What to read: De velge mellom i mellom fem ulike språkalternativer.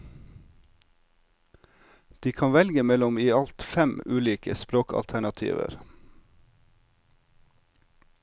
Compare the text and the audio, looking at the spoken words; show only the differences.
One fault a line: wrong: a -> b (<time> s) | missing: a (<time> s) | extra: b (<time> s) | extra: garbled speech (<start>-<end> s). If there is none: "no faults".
extra: kan (2.3 s)
wrong: mellom -> alt (3.3 s)